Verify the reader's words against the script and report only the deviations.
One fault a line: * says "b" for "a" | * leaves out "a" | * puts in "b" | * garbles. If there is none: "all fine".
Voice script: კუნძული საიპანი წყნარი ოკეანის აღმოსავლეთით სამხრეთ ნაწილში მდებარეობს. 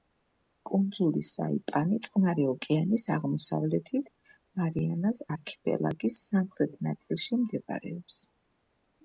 * puts in "მარიანას არქიპელაგის"